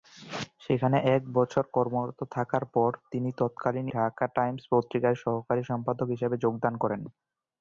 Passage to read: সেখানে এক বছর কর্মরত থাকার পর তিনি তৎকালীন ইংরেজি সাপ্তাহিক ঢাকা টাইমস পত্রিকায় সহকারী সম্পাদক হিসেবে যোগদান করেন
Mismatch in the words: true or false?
true